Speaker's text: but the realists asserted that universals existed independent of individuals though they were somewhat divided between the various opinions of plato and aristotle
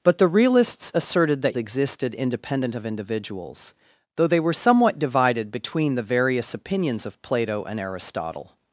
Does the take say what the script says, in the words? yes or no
no